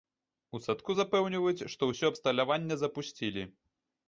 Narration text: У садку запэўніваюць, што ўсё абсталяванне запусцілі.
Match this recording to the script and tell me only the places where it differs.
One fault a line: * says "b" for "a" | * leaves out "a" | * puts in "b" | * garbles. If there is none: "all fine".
all fine